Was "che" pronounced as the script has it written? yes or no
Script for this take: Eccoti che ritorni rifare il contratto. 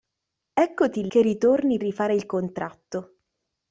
yes